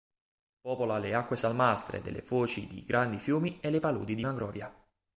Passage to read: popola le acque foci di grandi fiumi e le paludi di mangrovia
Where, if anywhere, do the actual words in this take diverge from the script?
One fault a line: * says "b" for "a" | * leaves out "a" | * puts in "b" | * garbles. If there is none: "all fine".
* puts in "salmastre delle"